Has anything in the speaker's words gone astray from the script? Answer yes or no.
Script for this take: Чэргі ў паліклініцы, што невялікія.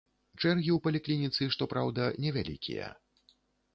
yes